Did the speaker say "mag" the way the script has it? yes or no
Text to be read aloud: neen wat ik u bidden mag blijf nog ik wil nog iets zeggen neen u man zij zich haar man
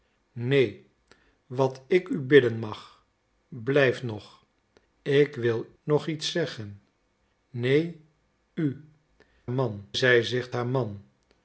yes